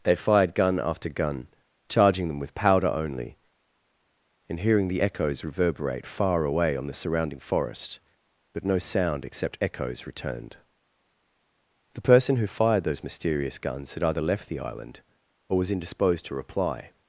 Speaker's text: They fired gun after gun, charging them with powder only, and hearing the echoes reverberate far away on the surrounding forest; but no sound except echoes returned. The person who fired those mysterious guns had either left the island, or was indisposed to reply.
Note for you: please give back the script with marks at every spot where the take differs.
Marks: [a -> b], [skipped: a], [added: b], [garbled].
They fired gun after gun, charging them with powder only, and hearing the echoes reverberate far away on the surrounding forest; but no sound except echoes returned. The person who fired those mysterious guns had either left the island, or was indisposed to reply.